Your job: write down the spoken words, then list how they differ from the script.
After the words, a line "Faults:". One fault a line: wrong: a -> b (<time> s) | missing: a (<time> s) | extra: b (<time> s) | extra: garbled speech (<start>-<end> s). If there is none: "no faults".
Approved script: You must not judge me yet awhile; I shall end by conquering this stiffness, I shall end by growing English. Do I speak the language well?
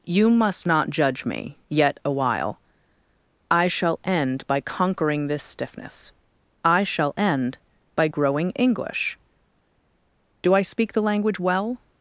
You must not judge me yet awhile; I shall end by conquering this stiffness, I shall end by growing English. Do I speak the language well?
Faults:
no faults